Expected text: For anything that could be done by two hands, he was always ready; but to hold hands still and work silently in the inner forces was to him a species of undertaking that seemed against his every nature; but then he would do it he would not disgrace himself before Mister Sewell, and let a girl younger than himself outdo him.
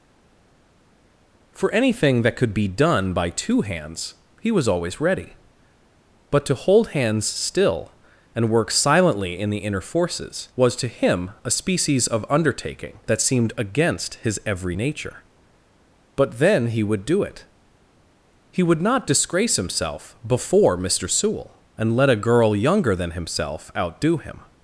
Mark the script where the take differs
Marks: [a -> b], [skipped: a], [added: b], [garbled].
For anything that could be done by two hands, he was always ready; but to hold hands still and work silently in the inner forces was to him a species of undertaking that seemed against his every nature; but then he would do it he would not disgrace himself before Mister Sewell, and let a girl younger than himself outdo him.